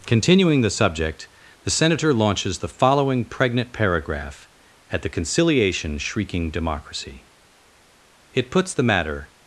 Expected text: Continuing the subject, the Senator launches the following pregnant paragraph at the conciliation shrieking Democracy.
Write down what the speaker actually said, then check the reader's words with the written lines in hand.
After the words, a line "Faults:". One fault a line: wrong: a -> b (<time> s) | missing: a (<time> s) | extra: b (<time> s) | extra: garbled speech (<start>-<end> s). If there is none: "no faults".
Continuing the subject, the Senator launches the following pregnant paragraph at the conciliation shrieking Democracy. It puts the matter
Faults:
extra: It puts the matter (8.3 s)